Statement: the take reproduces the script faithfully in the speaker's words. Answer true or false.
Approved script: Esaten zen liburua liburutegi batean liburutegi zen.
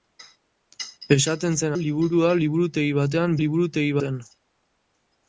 true